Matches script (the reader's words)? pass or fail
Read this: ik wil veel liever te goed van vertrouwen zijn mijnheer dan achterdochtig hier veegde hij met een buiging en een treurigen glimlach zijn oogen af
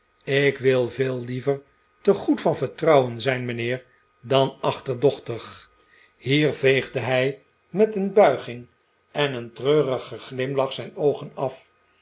pass